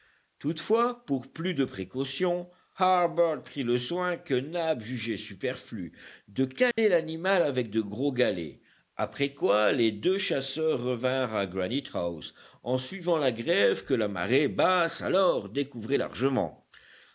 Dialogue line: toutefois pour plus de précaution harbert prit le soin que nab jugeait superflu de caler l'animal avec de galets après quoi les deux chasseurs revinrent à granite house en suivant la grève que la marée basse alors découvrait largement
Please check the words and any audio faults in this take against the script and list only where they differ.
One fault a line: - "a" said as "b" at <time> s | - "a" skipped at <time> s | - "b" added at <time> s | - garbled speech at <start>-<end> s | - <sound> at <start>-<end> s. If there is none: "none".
- dropout at 6.7-6.8 s
- "gros" added at 7.8 s